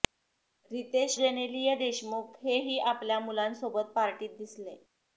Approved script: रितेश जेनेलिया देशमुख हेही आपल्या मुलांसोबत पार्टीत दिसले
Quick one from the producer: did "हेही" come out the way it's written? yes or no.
yes